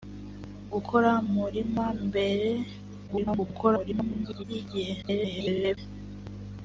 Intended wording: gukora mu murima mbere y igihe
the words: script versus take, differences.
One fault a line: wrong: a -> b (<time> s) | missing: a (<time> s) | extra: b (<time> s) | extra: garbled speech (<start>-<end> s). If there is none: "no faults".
missing: mu (1.1 s)
extra: garbled speech (3.1-4.4 s)
extra: garbled speech (5.0-5.8 s)